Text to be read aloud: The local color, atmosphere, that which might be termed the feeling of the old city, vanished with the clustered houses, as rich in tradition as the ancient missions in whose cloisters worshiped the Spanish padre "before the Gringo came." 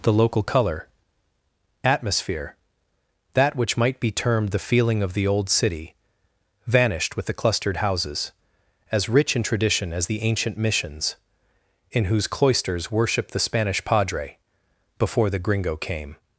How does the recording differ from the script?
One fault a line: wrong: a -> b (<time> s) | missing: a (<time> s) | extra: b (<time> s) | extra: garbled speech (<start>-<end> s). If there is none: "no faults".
no faults